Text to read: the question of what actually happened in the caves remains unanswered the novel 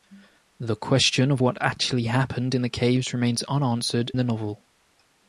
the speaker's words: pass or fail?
pass